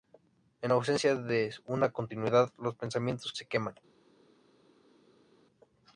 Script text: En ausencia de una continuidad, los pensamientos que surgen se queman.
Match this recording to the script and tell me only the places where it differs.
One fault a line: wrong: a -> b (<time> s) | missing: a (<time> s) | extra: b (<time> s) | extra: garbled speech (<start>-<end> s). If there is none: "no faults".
missing: que surgen (3.3 s)